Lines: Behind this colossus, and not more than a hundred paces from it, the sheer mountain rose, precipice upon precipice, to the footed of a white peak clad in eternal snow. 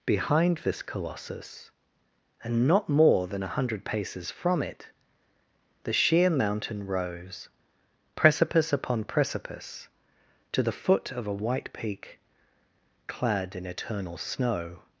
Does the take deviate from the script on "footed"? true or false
true